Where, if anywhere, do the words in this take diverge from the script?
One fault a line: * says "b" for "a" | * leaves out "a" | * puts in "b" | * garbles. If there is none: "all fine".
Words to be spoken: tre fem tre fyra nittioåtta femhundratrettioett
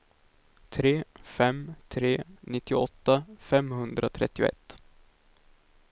* leaves out "fyra"